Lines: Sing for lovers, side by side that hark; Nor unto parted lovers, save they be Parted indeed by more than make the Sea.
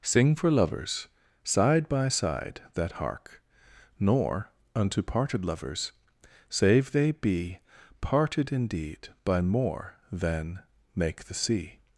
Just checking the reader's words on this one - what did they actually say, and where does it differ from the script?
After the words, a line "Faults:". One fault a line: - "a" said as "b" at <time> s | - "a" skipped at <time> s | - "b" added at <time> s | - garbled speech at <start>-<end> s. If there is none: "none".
Sing for lovers, side by side that hark; Nor unto parted lovers, save they be Parted indeed by more than make the Sea.
Faults:
none